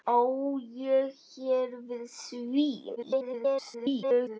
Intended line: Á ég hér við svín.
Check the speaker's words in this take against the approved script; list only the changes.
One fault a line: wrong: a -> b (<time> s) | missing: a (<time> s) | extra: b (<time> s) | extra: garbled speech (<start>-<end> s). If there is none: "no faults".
extra: garbled speech (3.0-4.4 s)